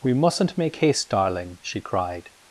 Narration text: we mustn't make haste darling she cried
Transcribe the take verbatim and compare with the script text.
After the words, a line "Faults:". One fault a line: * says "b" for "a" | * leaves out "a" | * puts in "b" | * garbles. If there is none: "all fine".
we mustn't make haste darling she cried
Faults:
all fine